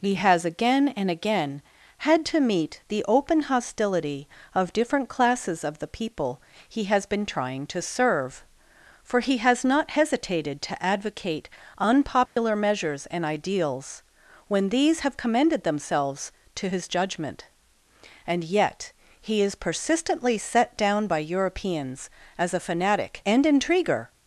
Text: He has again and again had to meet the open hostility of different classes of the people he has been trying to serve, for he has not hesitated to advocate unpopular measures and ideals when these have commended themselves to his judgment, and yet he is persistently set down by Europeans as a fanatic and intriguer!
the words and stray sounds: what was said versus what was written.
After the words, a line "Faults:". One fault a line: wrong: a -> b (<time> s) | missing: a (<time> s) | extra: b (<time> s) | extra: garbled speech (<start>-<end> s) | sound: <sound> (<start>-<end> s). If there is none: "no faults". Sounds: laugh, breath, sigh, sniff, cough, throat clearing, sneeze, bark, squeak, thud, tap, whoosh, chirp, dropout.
He has again and again had to meet the open hostility of different classes of the people he has been trying to serve, for he has not hesitated to advocate unpopular measures and ideals when these have commended themselves to his judgment, and yet he is persistently set down by Europeans as a fanatic and intriguer!
Faults:
sound: dropout (12.3-12.4 s)